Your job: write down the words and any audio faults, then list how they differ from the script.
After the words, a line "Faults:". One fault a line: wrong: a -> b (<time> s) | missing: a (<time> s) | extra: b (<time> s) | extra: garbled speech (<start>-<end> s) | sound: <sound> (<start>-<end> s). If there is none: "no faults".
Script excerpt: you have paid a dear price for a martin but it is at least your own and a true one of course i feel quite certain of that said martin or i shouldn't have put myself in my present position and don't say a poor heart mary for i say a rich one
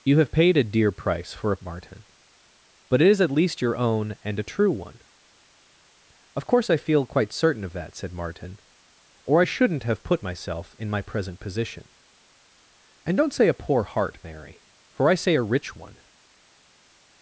you have paid a dear price for a martin but it is at least your own and a true one of course i feel quite certain of that said martin or i shouldn't have put myself in my present position and don't say a poor heart mary for i say a rich one
Faults:
no faults